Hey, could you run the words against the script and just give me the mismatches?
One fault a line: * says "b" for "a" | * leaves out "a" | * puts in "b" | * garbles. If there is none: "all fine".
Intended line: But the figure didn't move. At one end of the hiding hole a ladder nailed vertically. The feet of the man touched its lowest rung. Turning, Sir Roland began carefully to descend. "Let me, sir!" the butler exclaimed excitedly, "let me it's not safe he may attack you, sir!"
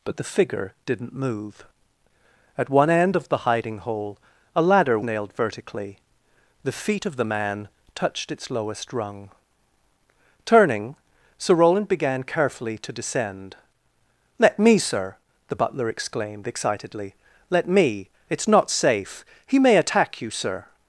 all fine